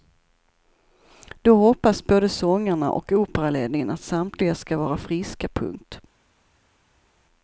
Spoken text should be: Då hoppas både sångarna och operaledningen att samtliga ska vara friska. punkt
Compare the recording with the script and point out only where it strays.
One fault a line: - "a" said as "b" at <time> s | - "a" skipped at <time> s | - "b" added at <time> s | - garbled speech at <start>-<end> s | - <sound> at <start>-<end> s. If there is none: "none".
none